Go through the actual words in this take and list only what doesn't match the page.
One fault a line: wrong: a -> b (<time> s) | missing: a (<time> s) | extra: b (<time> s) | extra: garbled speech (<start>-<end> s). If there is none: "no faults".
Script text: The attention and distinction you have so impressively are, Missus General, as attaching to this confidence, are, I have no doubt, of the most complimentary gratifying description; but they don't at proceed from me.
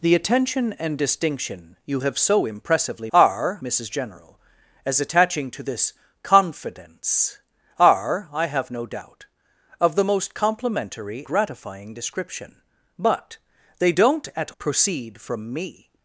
no faults